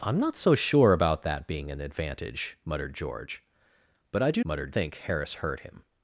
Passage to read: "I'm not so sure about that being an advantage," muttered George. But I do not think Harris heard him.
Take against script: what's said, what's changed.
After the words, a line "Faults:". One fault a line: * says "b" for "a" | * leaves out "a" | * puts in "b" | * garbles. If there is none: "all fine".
"I'm not so sure about that being an advantage," muttered George. But I do muttered think Harris heard him.
Faults:
* says "muttered" for "not"